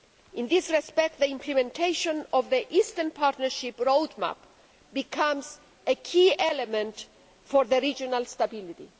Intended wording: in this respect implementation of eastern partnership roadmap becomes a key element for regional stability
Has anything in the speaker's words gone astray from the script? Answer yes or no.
yes